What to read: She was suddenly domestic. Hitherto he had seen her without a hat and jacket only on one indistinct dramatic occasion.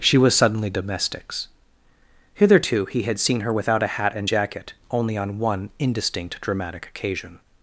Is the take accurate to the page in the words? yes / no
no